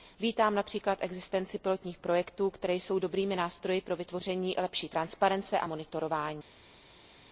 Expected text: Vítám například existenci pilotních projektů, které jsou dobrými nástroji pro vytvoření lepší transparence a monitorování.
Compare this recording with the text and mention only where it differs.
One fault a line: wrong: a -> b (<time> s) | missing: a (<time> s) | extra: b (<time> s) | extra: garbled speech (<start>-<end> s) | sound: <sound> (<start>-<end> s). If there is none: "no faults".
no faults